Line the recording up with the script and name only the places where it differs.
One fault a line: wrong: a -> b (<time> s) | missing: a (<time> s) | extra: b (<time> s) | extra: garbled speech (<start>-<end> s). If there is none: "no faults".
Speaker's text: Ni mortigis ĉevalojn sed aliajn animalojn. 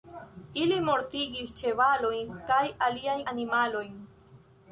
wrong: Ni -> Ili (0.6 s)
wrong: sed -> kaj (2.5 s)